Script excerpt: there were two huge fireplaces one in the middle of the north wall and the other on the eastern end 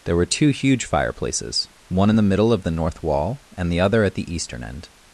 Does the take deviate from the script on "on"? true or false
true